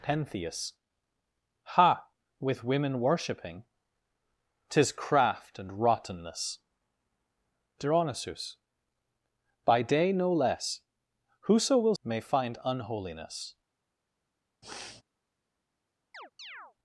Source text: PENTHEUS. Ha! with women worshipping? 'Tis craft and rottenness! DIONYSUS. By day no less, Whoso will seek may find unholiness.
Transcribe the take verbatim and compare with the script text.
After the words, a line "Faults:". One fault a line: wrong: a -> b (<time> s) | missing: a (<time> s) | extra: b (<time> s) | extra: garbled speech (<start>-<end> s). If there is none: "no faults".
PENTHEUS. Ha! with women worshipping? 'Tis craft and rottenness! DIONYSUS. By day no less, Whoso will may find unholiness.
Faults:
missing: seek (11.9 s)